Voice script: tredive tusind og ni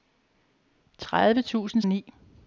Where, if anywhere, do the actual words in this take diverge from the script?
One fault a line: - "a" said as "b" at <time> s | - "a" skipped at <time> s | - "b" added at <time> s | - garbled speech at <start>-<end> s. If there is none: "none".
none